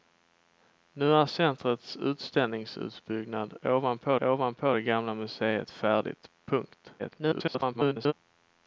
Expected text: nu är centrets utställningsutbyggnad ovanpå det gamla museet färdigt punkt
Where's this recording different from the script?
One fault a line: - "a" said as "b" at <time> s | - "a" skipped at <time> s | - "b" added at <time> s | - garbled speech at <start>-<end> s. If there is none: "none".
- "ovanpå" added at 4.2 s
- garbled speech at 7.0-8.1 s